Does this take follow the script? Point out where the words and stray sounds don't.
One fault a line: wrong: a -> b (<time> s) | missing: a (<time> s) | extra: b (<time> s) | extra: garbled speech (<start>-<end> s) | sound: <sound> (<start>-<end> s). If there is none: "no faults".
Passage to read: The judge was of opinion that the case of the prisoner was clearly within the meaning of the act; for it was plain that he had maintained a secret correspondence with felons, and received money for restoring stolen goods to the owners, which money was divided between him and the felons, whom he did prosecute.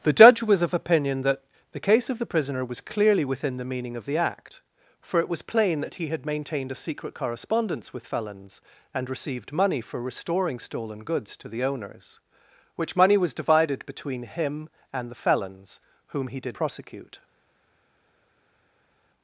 no faults